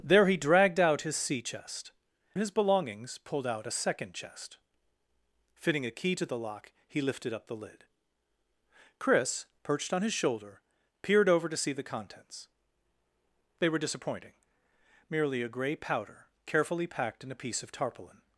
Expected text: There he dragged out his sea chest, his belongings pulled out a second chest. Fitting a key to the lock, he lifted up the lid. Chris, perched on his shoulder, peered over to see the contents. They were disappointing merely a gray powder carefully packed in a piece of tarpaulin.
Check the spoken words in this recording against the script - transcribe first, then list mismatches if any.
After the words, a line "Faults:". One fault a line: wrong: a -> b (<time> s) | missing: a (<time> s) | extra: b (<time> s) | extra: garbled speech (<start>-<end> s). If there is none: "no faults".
There he dragged out his sea chest, his belongings pulled out a second chest. Fitting a key to the lock, he lifted up the lid. Chris, perched on his shoulder, peered over to see the contents. They were disappointing merely a gray powder carefully packed in a piece of tarpaulin.
Faults:
no faults